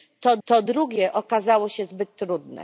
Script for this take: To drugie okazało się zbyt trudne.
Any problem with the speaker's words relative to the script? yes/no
yes